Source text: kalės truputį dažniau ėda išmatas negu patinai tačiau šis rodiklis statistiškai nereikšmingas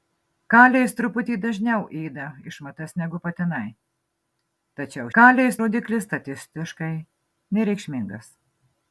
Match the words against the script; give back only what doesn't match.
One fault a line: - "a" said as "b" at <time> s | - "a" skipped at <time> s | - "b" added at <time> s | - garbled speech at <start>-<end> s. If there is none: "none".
- "šis" said as "kalės" at 5.1 s